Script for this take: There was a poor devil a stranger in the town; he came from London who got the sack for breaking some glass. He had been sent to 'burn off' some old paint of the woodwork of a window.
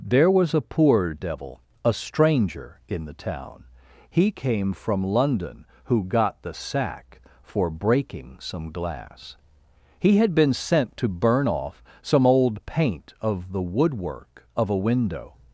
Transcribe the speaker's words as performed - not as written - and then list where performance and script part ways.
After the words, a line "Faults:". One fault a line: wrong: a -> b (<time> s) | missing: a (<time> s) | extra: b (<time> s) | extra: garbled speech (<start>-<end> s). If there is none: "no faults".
There was a poor devil a stranger in the town; he came from London who got the sack for breaking some glass. He had been sent to 'burn off' some old paint of the woodwork of a window.
Faults:
no faults